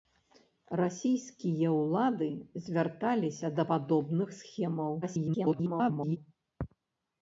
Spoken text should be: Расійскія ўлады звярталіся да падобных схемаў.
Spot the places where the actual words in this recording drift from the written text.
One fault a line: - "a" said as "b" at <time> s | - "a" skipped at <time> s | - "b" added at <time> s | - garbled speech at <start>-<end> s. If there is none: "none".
- garbled speech at 5.0-6.2 s